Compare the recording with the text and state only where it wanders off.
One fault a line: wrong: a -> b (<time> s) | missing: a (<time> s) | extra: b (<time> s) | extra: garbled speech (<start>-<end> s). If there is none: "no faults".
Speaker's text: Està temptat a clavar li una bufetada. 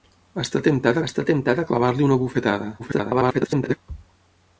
extra: està temptat (1.1 s)
extra: garbled speech (2.8-3.8 s)